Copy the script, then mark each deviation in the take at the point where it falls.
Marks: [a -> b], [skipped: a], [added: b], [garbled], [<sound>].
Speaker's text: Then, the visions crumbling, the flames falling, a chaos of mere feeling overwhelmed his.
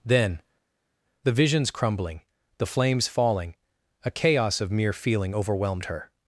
Then, the visions crumbling, the flames falling, a chaos of mere feeling overwhelmed [his. -> her]